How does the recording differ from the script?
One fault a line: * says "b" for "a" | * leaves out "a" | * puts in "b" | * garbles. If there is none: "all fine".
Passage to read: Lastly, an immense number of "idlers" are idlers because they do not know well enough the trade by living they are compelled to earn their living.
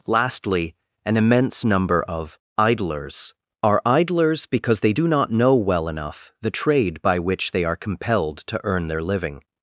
* says "which" for "living"